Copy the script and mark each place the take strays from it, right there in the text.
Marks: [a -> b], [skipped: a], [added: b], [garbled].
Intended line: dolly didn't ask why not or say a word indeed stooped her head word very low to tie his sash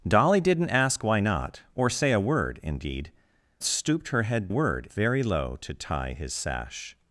dolly didn't ask why not or say a word indeed stooped her head word very low to tie his sash